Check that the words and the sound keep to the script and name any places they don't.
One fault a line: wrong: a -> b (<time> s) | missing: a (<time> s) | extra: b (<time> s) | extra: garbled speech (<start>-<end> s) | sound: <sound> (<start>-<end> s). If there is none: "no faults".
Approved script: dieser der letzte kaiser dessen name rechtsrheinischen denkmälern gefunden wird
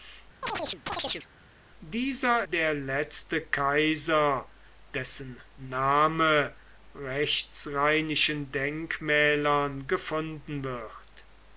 sound: chirp (0.4-1.3 s)